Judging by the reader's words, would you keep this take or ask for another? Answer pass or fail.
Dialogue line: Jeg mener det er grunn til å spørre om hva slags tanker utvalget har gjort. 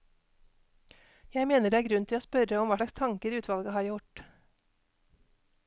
pass